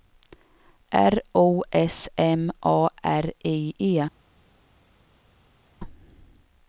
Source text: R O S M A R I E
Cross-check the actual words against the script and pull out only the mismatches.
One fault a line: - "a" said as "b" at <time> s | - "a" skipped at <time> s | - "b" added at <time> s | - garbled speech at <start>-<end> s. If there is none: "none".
none